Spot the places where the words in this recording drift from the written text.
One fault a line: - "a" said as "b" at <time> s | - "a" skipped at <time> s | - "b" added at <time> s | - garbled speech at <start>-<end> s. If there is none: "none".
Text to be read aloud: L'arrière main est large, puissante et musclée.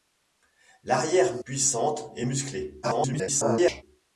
- "main est large" skipped at 1.4 s
- garbled speech at 2.8-3.8 s